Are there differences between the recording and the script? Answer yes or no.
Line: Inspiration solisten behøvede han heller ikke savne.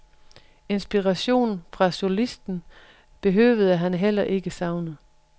yes